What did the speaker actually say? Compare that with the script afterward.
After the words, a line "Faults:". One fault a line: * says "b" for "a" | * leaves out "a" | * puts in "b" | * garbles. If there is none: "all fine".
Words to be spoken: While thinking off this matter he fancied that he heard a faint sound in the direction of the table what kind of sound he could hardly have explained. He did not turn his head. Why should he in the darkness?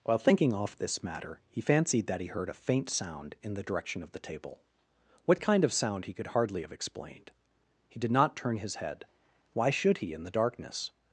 While thinking off this matter he fancied that he heard a faint sound in the direction of the table what kind of sound he could hardly have explained. He did not turn his head. Why should he in the darkness?
Faults:
all fine